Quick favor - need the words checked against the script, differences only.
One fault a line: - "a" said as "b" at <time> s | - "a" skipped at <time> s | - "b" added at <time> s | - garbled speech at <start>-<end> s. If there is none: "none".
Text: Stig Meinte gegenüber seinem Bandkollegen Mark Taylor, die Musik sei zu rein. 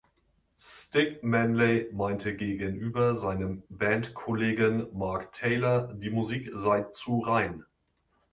- "Manley" added at 1.2 s